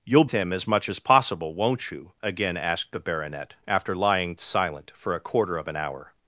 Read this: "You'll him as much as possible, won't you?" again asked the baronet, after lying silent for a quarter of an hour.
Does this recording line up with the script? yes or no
yes